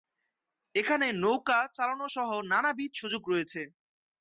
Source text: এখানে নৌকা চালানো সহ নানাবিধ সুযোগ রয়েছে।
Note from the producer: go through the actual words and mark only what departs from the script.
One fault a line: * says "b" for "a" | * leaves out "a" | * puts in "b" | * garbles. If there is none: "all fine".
all fine